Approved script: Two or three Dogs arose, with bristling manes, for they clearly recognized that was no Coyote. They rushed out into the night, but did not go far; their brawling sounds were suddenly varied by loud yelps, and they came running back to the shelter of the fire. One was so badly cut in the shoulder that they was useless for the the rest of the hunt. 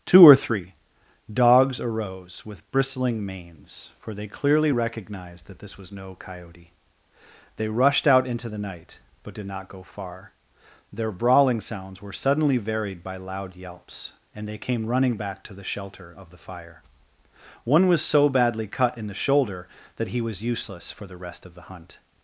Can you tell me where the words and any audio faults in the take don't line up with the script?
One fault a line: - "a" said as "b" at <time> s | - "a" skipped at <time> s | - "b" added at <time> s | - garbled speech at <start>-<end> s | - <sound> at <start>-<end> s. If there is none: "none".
- "this" added at 5.6 s
- "they" said as "he" at 20.1 s
- "the" skipped at 21.2 s